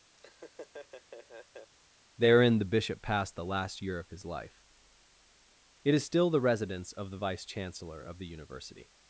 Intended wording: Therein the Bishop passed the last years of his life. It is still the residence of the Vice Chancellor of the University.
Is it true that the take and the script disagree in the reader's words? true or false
true